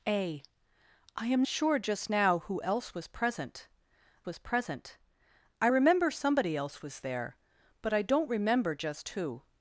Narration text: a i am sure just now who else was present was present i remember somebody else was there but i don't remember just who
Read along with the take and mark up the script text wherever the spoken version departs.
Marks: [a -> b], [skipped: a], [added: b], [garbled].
a i am sure just now who else was present was present i remember somebody else was there but i don't remember just who